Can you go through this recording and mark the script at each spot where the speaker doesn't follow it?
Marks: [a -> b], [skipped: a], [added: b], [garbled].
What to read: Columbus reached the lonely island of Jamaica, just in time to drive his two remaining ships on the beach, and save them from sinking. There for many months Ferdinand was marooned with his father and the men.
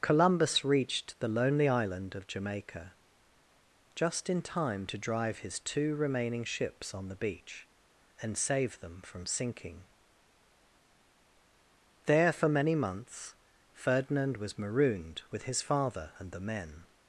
Columbus reached the lonely island of Jamaica, just in time to drive his two remaining ships on the beach, and save them from sinking. There for many months Ferdinand was marooned with his father and the men.